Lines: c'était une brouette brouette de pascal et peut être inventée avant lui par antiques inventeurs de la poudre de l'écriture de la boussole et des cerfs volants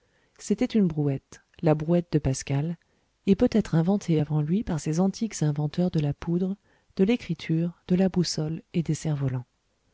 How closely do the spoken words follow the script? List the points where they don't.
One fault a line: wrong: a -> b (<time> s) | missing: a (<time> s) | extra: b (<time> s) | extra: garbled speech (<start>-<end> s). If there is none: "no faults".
extra: la (1.6 s)
extra: ces (4.8 s)